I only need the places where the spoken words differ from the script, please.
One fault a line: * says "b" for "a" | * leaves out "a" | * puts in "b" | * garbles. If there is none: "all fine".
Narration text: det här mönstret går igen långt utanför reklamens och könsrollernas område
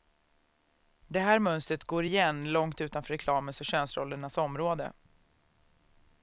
all fine